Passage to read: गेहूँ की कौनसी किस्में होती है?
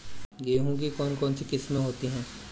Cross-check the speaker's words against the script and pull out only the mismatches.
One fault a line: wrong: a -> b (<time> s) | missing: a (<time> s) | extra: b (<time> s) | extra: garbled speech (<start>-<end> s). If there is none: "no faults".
extra: कौन (0.9 s)